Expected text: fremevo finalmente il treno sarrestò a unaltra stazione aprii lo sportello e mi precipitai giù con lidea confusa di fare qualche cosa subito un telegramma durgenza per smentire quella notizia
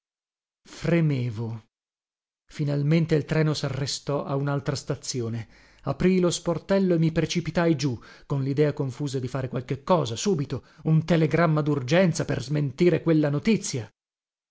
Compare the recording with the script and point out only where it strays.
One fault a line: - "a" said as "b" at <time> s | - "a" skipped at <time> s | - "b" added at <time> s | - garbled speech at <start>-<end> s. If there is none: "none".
none